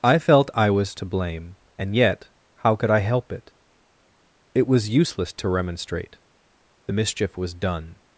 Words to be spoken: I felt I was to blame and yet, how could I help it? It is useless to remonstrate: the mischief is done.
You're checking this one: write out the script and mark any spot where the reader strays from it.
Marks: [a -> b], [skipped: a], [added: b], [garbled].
I felt I was to blame and yet, how could I help it? It [is -> was] useless to remonstrate: the mischief [is -> was] done.